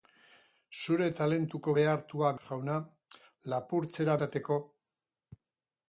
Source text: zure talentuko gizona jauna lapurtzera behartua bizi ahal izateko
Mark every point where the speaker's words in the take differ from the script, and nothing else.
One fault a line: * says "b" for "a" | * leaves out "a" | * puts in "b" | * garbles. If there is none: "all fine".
* says "behartua" for "gizona"
* leaves out "behartua bizi ahal"